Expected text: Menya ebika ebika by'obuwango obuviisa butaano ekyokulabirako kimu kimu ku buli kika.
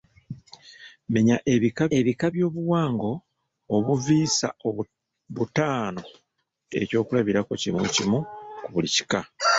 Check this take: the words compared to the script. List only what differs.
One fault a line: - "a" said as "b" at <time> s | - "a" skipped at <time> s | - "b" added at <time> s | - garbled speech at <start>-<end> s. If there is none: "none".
none